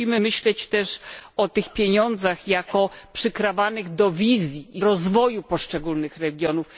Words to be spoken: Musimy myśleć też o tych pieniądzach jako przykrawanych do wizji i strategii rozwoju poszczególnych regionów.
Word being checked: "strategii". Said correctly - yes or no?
no